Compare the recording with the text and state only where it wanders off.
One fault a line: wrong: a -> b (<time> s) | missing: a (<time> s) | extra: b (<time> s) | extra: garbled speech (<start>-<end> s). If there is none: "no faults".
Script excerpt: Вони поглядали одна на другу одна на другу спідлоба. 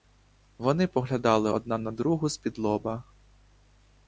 missing: одна на другу (2.3 s)